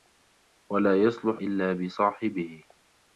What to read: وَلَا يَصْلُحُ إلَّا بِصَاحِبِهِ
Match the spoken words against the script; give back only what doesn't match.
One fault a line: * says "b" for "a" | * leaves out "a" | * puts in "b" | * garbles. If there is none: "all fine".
all fine